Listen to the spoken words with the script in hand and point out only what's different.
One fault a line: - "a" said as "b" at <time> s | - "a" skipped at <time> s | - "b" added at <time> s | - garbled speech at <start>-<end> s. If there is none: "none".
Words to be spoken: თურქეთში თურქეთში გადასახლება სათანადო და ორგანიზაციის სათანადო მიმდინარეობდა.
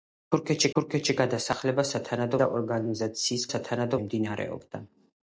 none